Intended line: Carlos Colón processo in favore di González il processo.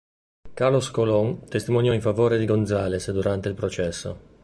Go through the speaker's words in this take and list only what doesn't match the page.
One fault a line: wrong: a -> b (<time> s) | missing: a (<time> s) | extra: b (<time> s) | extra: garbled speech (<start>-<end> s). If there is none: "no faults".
wrong: processo -> testimoniò (1.5 s)
extra: durante (3.1 s)